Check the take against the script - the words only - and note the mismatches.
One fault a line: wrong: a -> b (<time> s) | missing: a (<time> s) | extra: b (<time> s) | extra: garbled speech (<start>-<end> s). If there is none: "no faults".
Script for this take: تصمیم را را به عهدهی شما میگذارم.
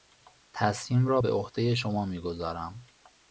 missing: را (1.2 s)